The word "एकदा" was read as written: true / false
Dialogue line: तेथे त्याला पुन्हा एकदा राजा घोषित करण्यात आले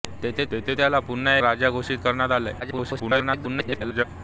false